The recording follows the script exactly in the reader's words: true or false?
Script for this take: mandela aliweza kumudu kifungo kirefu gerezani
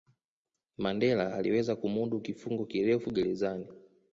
true